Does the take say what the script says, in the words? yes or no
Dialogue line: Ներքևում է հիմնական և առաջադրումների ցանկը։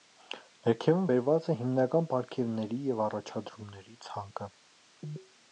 no